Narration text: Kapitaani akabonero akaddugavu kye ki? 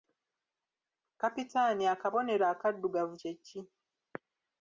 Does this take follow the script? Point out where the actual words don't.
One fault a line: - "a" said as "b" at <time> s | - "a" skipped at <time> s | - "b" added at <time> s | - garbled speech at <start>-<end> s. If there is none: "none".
none